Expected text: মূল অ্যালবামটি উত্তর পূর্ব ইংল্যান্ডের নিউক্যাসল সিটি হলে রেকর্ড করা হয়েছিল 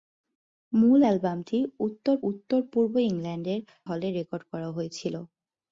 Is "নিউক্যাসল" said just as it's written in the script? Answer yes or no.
no